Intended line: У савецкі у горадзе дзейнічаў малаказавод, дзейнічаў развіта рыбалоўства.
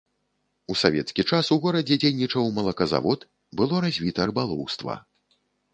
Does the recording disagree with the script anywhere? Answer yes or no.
yes